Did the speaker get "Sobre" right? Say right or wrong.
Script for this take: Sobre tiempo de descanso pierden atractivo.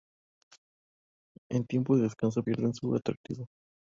wrong